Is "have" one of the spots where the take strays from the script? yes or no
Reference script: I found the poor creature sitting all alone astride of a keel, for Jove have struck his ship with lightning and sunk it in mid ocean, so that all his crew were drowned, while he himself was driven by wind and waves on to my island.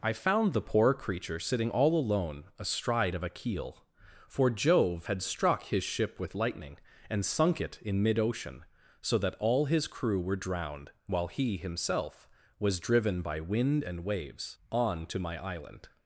yes